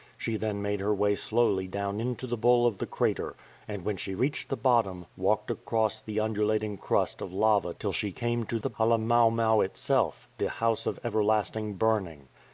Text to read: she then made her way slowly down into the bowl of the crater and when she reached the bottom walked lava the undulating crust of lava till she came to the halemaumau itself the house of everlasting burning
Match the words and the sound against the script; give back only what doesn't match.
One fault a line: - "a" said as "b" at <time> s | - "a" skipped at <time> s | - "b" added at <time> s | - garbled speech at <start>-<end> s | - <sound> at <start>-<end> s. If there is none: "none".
- "lava" said as "across" at 5.5 s